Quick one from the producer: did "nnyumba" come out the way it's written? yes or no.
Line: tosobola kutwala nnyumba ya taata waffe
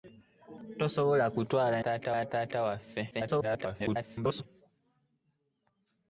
no